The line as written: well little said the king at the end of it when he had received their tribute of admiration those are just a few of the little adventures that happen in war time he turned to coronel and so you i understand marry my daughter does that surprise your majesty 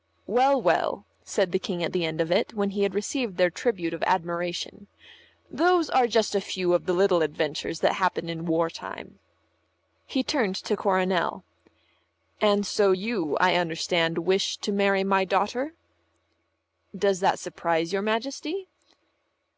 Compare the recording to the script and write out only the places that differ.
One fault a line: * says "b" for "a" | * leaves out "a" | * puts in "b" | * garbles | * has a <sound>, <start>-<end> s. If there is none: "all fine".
* says "well" for "little"
* puts in "wish to"